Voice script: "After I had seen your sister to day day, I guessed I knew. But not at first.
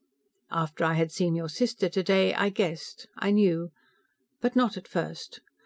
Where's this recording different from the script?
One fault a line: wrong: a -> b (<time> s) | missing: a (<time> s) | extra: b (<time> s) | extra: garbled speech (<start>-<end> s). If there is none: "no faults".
missing: day (2.3 s)